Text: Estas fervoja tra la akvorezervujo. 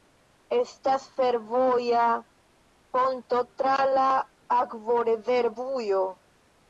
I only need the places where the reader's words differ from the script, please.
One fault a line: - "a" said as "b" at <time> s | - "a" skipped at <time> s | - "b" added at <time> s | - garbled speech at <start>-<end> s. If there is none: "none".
- "ponto" added at 3.0 s